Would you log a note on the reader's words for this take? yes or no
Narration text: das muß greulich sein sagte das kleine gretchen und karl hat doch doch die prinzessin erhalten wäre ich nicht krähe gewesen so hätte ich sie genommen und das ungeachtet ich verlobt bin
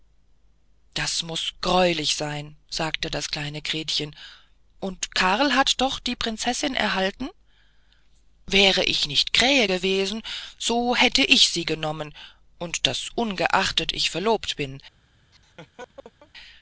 yes